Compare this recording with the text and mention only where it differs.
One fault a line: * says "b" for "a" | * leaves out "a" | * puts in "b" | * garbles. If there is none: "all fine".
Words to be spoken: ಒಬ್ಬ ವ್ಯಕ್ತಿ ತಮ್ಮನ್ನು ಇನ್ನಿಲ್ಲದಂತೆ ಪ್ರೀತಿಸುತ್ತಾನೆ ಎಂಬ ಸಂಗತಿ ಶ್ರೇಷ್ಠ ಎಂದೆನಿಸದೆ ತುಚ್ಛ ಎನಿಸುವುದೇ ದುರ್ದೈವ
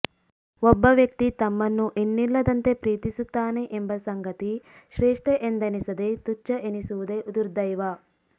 all fine